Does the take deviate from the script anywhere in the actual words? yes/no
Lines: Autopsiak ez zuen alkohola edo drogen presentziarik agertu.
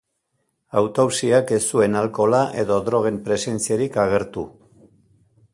no